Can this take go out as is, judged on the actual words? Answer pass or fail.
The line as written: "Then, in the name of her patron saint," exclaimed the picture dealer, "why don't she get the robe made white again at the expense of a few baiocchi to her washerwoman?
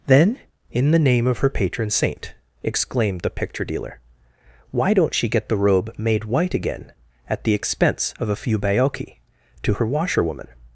pass